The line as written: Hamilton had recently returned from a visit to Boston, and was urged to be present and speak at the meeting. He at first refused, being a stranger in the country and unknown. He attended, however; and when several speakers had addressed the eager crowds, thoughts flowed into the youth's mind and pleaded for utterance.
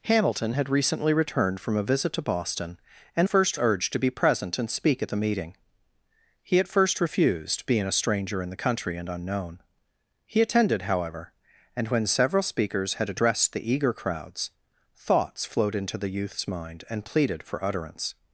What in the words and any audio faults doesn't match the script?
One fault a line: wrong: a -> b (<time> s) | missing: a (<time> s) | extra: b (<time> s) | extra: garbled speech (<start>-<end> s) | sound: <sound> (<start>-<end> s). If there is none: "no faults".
wrong: was -> first (3.3 s)